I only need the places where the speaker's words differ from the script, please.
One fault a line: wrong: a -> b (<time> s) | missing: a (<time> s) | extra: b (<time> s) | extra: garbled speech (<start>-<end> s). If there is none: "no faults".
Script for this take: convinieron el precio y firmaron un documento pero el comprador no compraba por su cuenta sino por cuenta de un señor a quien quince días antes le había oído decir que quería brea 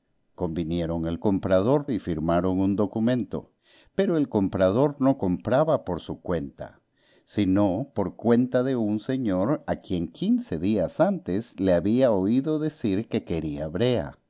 wrong: precio -> comprador (1.2 s)